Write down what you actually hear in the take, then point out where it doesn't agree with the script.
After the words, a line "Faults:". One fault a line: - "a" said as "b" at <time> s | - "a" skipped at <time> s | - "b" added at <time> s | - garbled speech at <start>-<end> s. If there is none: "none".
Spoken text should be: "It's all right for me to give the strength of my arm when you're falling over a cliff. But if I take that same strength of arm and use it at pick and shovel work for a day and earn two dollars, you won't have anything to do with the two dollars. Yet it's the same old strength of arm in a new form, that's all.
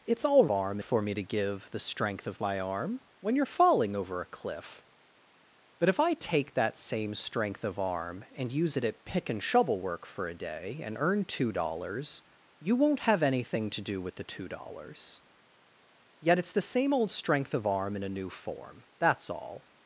"It's all arm for me to give the strength of my arm when you're falling over a cliff. But if I take that same strength of arm and use it at pick and shovel work for a day and earn two dollars, you won't have anything to do with the two dollars. Yet it's the same old strength of arm in a new form, that's all.
Faults:
- "right" said as "arm" at 0.5 s